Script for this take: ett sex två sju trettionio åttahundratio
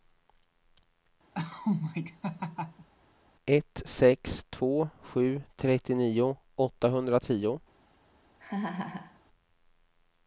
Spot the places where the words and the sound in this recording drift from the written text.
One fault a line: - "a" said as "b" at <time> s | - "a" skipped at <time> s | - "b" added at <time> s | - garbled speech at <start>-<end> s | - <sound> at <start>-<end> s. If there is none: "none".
- laugh at 1.3-2.9 s
- laugh at 8.4-9.2 s